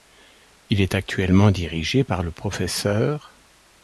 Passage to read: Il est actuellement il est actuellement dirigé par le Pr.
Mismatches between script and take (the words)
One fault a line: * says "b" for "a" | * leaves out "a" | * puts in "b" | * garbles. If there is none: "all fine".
* leaves out "il est actuellement"